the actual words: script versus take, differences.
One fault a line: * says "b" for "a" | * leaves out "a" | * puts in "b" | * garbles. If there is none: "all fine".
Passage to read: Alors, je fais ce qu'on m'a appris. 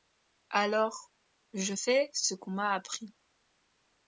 all fine